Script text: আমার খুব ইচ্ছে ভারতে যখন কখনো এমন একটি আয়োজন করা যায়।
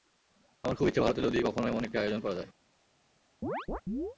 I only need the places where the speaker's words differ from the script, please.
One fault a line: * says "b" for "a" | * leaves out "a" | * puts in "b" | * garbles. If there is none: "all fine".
* says "যদি" for "যখন"